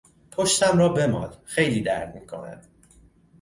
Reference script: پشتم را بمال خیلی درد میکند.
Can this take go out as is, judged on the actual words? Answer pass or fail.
pass